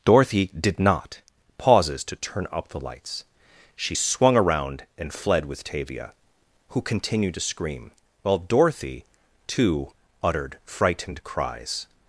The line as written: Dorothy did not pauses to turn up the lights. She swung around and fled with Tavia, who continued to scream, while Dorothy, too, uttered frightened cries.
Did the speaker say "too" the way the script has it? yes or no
yes